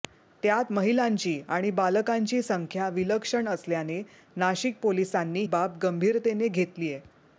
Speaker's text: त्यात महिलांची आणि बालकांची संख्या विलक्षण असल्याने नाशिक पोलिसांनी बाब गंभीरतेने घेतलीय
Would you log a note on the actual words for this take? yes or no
no